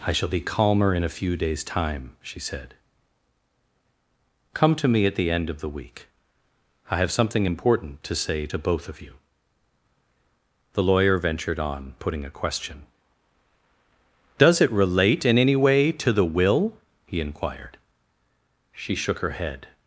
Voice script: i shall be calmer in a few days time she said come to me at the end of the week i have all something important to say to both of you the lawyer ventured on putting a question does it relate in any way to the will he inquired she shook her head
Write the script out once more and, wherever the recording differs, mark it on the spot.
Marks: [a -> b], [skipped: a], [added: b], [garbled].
i shall be calmer in a few days time she said come to me at the end of the week i have [skipped: all] something important to say to both of you the lawyer ventured on putting a question does it relate in any way to the will he inquired she shook her head